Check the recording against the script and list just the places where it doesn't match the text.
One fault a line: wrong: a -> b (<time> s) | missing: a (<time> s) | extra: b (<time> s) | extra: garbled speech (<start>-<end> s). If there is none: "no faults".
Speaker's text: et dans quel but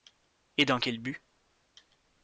no faults